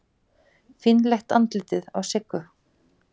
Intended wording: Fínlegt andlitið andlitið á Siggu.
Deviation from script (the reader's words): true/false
true